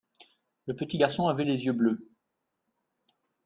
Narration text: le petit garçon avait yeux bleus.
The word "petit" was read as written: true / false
true